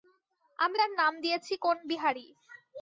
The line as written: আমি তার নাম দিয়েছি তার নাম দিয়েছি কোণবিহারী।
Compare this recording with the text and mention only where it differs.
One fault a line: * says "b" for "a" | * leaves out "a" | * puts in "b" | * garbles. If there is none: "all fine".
* leaves out "তার নাম দিয়েছি"